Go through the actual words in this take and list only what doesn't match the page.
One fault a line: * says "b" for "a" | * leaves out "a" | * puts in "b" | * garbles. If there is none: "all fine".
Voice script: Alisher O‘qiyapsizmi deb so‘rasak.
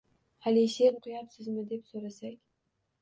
all fine